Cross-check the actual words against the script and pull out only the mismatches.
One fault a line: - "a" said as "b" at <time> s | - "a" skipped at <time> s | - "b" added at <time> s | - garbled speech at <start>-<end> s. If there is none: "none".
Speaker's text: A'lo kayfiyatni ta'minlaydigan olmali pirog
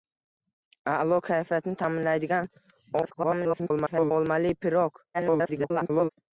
- garbled speech at 3.0-4.1 s
- garbled speech at 5.1-6.1 s